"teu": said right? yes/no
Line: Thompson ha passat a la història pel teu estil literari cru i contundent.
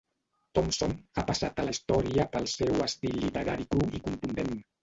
no